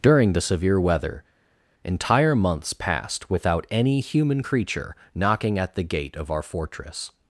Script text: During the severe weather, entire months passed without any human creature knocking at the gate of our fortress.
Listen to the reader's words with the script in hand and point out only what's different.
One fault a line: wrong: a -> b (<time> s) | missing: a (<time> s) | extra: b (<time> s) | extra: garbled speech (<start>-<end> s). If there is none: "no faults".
no faults